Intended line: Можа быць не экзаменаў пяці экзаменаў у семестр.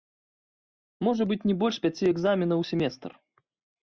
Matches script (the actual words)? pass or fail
fail